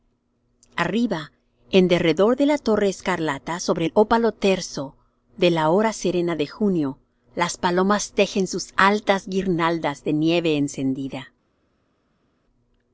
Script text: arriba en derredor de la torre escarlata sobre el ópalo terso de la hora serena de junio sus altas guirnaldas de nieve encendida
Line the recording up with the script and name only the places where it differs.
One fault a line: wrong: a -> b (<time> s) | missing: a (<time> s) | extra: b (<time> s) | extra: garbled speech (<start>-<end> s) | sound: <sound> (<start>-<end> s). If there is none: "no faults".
extra: las palomas tejen (7.4 s)